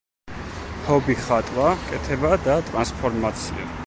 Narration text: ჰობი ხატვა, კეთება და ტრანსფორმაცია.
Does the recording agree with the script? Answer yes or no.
yes